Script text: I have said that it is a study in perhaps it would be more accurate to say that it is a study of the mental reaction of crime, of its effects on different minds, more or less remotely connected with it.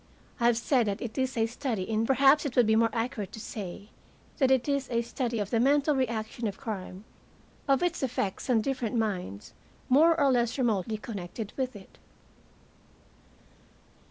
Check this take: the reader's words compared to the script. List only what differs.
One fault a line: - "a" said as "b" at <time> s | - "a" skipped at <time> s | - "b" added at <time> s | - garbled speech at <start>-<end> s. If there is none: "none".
none